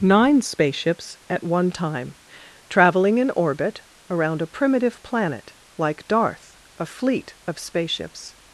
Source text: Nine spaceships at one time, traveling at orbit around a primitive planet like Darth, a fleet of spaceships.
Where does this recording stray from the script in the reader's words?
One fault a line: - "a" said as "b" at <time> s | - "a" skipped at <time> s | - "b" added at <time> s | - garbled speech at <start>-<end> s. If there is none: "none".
- "at" said as "in" at 3.2 s